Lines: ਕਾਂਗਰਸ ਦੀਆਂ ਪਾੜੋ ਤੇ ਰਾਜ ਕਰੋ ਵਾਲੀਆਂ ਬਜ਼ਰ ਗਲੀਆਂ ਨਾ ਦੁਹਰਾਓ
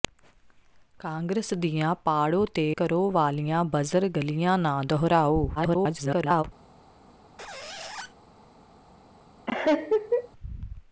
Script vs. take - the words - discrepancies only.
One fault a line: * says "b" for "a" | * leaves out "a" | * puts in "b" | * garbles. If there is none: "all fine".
* leaves out "ਰਾਜ"
* garbles